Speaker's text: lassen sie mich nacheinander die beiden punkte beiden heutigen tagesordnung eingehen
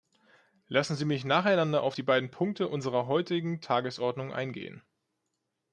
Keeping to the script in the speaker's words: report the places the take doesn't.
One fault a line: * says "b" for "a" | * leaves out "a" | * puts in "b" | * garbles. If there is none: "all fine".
* puts in "auf"
* says "unserer" for "beiden"